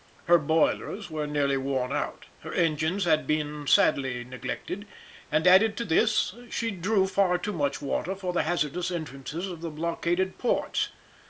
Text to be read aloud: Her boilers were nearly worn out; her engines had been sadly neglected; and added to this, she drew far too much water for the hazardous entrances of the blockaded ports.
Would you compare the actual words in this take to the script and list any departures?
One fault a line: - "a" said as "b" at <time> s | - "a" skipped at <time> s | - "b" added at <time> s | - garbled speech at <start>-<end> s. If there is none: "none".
none